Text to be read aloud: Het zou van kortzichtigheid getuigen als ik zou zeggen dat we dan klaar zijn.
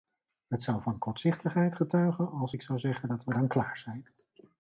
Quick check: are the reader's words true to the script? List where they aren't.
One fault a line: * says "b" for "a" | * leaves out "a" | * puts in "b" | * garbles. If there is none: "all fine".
all fine